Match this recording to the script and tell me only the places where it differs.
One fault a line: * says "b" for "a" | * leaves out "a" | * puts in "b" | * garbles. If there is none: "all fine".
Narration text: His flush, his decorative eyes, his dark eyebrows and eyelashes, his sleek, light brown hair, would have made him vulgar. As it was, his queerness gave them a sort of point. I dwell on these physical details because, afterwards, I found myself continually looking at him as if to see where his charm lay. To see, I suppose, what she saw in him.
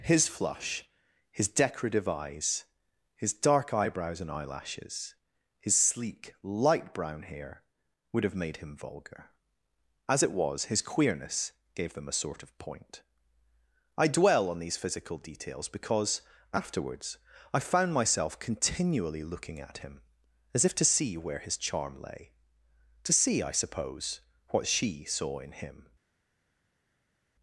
all fine